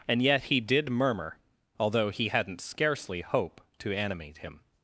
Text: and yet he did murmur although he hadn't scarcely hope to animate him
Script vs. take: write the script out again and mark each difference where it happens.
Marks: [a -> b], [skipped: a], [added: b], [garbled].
and yet he did murmur although he hadn't scarcely hope to animate him